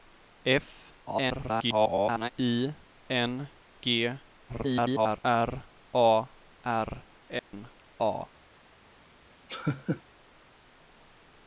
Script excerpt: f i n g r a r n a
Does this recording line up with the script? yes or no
no